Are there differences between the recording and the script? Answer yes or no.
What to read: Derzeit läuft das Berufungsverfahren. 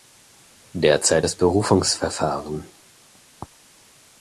yes